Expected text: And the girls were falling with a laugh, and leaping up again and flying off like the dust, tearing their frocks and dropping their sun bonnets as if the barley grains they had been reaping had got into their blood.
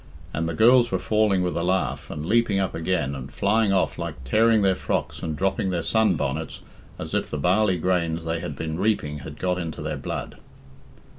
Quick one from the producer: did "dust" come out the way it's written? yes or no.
no